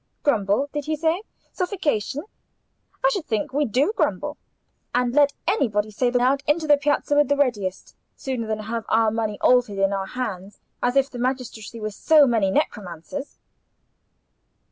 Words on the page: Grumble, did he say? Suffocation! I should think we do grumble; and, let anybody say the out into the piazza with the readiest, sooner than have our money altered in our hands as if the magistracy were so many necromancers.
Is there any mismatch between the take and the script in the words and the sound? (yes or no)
no